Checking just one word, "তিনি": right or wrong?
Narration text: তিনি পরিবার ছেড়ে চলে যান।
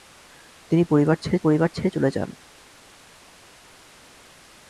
right